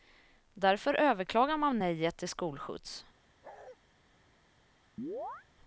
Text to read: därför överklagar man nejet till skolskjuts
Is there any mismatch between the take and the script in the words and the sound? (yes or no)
yes